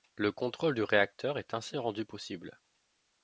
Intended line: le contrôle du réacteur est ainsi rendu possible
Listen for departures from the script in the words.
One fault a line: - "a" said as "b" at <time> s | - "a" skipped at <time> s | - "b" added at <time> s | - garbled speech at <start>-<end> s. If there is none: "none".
none